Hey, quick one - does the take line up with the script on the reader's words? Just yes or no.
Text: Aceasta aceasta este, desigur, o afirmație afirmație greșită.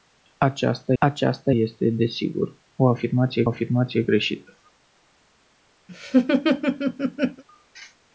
yes